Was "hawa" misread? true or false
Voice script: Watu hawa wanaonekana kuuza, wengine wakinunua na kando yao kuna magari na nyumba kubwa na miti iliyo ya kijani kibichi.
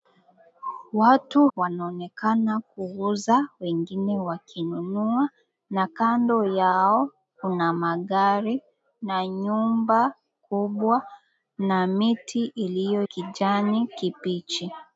true